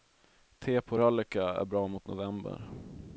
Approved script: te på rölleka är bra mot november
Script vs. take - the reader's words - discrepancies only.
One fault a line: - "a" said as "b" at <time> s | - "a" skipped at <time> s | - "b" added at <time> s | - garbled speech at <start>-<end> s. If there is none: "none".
none